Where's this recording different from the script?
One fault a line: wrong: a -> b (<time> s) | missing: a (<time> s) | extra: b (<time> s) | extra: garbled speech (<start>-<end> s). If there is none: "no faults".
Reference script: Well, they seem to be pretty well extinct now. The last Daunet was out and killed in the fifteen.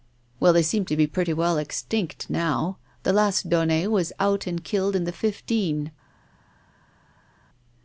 no faults